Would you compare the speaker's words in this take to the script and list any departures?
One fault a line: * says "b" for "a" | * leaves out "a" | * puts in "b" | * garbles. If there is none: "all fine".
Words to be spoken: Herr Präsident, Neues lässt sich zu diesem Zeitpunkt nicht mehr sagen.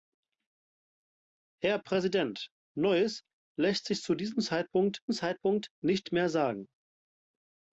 * puts in "Zeitpunkt"